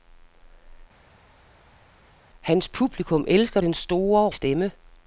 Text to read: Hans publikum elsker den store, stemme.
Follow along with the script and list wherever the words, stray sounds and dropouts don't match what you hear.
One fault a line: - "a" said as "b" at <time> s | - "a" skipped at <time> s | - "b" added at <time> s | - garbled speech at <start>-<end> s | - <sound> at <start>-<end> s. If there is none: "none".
none